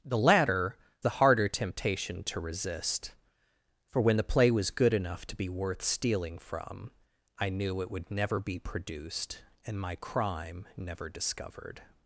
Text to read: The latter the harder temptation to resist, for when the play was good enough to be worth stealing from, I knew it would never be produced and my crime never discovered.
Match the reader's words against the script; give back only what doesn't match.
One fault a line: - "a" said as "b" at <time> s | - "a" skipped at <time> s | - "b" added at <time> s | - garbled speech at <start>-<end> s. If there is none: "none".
none